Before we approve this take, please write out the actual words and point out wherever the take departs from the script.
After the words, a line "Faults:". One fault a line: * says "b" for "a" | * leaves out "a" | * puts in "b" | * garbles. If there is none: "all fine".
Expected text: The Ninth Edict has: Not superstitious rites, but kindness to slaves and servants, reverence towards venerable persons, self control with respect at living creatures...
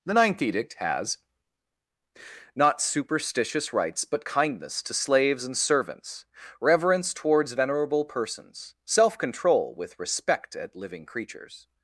The Ninth Edict has: Not superstitious rites, but kindness to slaves and servants, reverence towards venerable persons, self control with respect at living creatures...
Faults:
all fine